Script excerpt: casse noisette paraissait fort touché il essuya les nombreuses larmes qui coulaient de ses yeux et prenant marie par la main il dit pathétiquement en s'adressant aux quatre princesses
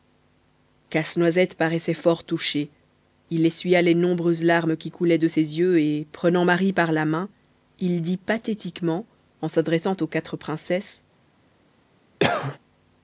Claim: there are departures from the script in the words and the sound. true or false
true